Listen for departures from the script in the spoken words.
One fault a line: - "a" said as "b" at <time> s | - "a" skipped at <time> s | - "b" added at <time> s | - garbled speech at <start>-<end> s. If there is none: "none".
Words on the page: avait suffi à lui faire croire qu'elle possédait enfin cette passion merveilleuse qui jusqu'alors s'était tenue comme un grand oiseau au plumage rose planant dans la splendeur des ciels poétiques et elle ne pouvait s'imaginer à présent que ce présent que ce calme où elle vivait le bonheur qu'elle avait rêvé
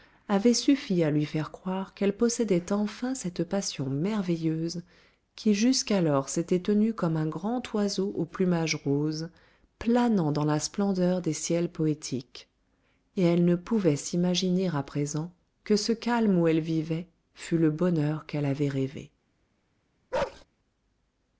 - "présent que ce" skipped at 15.9 s
- "fût" added at 17.4 s